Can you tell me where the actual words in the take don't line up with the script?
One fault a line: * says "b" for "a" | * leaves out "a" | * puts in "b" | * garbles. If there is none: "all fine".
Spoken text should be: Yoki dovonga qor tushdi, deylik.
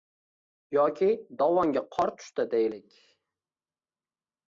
all fine